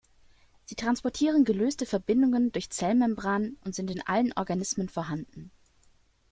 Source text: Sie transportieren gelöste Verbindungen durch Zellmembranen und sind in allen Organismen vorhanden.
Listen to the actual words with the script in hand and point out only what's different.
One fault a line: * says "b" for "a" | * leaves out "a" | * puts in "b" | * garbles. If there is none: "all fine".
all fine